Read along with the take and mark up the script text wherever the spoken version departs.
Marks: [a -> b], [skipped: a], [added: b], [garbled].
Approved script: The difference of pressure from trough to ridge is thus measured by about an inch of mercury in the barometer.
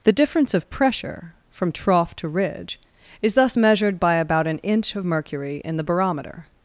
The difference of pressure from trough to ridge is thus measured by about an inch of mercury in the barometer.